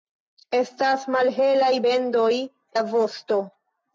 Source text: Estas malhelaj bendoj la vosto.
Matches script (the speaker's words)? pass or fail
pass